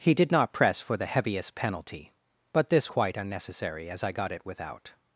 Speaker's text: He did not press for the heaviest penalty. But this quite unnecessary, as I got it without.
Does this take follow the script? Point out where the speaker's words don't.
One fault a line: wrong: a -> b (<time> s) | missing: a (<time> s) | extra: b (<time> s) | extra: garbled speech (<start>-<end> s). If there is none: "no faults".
no faults